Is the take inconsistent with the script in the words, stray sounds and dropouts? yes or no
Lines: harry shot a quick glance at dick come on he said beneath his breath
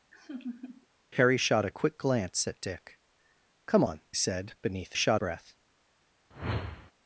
yes